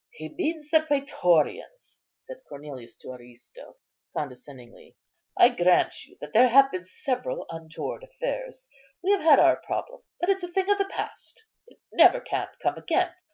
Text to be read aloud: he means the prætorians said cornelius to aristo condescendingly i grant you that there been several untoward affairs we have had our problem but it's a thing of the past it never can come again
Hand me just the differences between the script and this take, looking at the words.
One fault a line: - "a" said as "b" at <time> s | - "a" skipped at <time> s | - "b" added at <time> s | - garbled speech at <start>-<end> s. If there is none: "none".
- "have" added at 6.5 s